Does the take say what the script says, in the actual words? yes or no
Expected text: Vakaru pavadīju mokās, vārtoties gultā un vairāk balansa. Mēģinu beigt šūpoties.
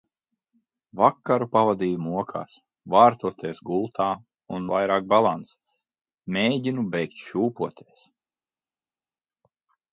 yes